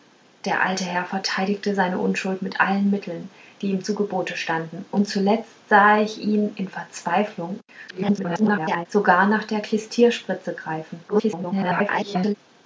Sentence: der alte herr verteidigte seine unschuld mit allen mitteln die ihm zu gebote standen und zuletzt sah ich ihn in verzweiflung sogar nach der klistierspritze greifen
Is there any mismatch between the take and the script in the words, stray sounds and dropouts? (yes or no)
yes